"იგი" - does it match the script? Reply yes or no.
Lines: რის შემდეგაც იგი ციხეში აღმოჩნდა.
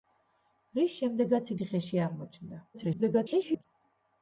no